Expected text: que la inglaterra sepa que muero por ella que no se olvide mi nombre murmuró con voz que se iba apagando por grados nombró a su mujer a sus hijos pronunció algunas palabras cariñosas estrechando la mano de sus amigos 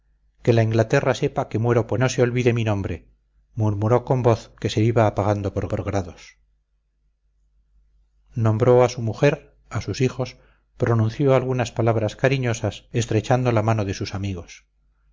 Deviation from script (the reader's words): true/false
true